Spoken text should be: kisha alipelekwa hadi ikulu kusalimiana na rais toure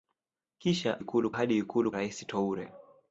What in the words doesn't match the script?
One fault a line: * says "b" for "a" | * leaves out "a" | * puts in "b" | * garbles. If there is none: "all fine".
* says "ikulu" for "alipelekwa"
* leaves out "kusalimiana na"